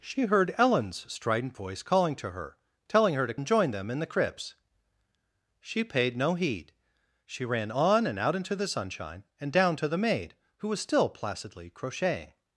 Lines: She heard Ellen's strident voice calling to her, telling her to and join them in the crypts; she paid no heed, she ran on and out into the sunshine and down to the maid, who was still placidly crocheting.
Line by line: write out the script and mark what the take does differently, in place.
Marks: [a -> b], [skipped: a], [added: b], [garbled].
She heard Ellen's strident voice calling to her, telling her to and join them in the crypts; she paid no heed, she ran on and out into the sunshine and down to the maid, who was still placidly crocheting.